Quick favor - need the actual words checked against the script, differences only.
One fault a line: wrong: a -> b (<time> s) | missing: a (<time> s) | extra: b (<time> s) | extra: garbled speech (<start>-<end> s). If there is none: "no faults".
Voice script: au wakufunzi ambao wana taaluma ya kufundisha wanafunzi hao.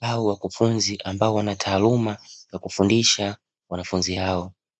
no faults